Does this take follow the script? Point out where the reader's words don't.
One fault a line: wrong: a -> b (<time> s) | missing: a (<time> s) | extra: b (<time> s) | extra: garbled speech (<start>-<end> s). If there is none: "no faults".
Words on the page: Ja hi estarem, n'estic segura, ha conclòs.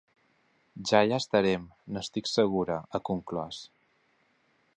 no faults